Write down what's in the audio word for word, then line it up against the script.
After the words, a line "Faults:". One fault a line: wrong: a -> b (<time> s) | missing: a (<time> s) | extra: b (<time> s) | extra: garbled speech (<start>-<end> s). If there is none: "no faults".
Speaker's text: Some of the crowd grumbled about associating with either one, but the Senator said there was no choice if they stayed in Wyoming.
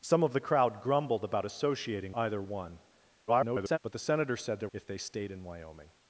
Some of the crowd grumbled about associating either one, [garbled] but the Senator said there if they stayed in Wyoming.
Faults:
missing: with (2.1 s)
extra: garbled speech (3.3-3.8 s)
missing: was no choice (4.7 s)